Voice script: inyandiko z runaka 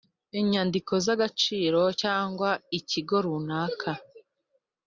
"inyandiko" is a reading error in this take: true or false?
false